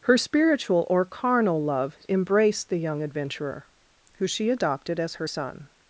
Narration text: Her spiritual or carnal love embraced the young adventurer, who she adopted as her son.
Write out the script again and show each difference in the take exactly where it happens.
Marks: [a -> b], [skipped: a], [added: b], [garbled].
Her spiritual or carnal love embraced the young adventurer, who she adopted as her son.